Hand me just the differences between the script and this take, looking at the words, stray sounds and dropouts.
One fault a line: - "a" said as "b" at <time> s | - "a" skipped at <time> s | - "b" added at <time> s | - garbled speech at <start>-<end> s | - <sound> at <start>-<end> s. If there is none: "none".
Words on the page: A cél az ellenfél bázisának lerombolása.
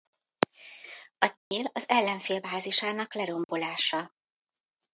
- dropout at 1.4-1.5 s
- dropout at 3.4-3.5 s